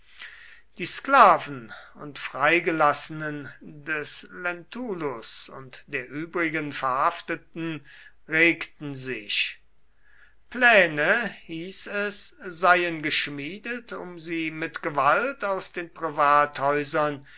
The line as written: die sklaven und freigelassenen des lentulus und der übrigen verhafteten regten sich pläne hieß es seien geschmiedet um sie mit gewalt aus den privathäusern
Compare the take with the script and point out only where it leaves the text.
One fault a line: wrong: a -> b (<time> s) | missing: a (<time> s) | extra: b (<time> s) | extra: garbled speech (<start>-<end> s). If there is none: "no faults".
no faults